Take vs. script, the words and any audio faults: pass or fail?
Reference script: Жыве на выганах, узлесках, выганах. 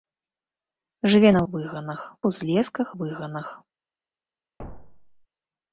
fail